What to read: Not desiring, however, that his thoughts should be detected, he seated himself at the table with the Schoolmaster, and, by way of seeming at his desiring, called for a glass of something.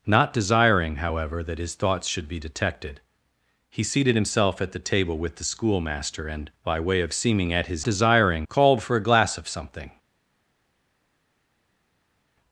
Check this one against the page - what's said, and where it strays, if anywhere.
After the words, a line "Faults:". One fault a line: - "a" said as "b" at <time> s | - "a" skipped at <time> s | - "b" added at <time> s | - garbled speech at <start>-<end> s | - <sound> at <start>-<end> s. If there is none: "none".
Not desiring, however, that his thoughts should be detected, he seated himself at the table with the Schoolmaster, and, by way of seeming at his desiring, called for a glass of something.
Faults:
none